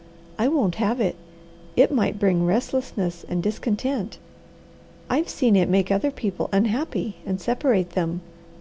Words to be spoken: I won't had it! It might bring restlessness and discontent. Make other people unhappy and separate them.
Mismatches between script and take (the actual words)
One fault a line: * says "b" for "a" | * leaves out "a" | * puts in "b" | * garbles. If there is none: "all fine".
* says "have" for "had"
* puts in "I've seen it"